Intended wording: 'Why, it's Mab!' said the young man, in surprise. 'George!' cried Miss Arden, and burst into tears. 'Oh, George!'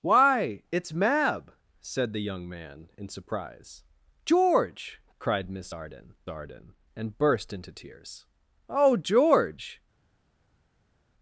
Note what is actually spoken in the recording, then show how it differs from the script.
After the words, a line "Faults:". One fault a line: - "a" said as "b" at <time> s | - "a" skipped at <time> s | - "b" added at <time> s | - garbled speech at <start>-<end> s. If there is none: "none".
'Why, it's Mab!' said the young man, in surprise. 'George!' cried Miss Arden Arden, and burst into tears. 'Oh, George!'
Faults:
- "Arden" added at 6.3 s